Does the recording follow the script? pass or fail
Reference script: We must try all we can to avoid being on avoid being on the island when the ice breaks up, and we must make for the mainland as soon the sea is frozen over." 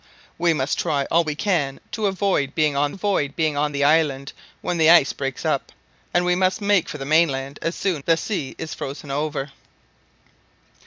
pass